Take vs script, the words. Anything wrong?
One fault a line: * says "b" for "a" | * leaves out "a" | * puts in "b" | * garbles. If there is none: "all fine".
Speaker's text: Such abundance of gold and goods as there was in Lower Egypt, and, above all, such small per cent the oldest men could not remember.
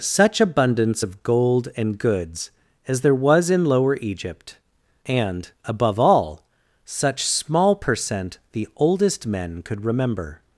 * leaves out "not"